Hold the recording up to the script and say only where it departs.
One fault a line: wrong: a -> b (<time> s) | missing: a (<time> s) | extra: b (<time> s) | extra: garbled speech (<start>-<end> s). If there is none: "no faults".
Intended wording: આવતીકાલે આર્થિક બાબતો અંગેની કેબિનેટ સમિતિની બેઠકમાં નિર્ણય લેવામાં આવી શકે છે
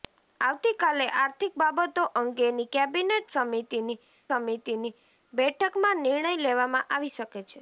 extra: સમિતિની (4.3 s)